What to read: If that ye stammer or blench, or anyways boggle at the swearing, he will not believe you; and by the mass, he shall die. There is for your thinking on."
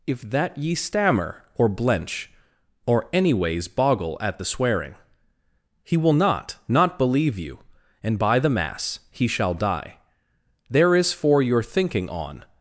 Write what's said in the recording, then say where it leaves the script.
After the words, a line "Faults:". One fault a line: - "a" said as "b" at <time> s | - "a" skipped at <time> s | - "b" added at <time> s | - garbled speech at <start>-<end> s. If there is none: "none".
If that ye stammer or blench, or anyways boggle at the swearing, he will not not believe you; and by the mass, he shall die. There is for your thinking on."
Faults:
- "not" added at 6.7 s